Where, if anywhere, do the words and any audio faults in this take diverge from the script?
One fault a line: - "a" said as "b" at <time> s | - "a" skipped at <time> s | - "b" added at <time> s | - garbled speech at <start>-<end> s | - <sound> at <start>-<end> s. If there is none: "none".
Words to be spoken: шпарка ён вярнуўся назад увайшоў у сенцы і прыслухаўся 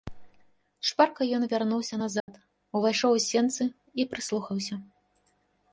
- dropout at 2.2-2.3 s